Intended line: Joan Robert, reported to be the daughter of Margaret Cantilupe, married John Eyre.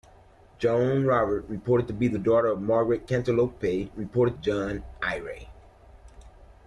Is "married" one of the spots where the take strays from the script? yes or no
yes